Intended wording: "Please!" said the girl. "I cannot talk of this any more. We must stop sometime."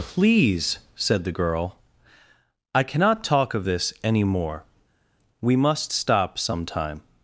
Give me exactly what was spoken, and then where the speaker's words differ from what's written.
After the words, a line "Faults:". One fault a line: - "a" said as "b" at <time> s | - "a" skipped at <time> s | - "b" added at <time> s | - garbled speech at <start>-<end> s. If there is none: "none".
"Please!" said the girl. "I cannot talk of this any more. We must stop sometime."
Faults:
none